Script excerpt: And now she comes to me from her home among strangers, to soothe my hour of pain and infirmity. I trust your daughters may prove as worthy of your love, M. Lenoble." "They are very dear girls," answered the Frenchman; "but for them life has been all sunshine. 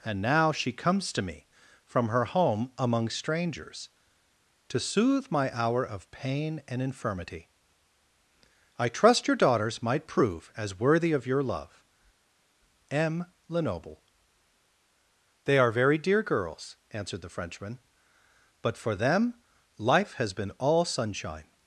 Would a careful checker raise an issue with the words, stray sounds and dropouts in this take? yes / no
yes